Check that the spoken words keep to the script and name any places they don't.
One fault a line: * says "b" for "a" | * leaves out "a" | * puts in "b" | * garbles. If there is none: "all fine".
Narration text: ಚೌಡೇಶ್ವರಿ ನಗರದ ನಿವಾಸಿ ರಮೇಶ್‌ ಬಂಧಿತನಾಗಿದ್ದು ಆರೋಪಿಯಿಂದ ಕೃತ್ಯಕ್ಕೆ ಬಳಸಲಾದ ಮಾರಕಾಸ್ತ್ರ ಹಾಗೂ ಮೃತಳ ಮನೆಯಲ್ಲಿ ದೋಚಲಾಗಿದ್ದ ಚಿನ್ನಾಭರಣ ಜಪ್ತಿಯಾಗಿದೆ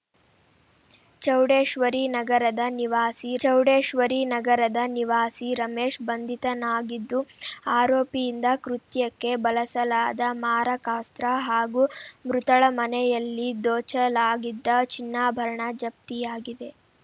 * puts in "ಚೌಡೇಶ್ವರಿ ನಗರದ ನಿವಾಸಿ"